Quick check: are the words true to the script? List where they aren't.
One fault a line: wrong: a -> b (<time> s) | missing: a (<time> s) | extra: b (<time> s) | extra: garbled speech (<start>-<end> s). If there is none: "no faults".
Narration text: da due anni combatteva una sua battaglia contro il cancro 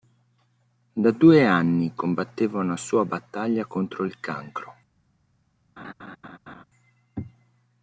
no faults